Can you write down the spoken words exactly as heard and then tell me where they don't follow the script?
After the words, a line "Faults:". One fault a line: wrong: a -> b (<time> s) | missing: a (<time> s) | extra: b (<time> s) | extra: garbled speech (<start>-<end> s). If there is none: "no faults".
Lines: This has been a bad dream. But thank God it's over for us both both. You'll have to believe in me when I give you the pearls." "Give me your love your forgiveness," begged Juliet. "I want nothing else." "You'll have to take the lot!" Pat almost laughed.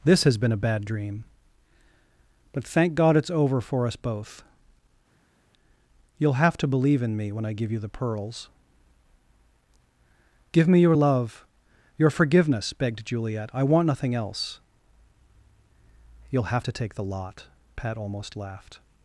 This has been a bad dream. But thank God it's over for us both. You'll have to believe in me when I give you the pearls." "Give me your love your forgiveness," begged Juliet. "I want nothing else." "You'll have to take the lot!" Pat almost laughed.
Faults:
missing: both (4.4 s)